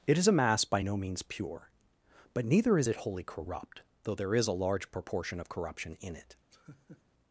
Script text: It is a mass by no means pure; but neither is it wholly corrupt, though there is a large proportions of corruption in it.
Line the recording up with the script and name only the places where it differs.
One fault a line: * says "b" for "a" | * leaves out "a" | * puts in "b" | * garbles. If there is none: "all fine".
* says "proportion" for "proportions"